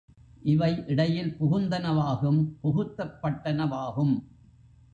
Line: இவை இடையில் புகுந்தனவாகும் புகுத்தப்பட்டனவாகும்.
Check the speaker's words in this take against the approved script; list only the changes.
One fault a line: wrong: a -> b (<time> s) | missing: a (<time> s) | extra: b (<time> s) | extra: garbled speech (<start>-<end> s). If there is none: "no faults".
no faults